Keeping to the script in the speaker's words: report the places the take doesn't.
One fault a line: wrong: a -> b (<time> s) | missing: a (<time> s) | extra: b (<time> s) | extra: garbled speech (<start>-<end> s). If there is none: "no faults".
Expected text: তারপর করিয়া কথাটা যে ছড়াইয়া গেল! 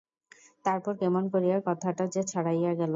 extra: কেমন (1.0 s)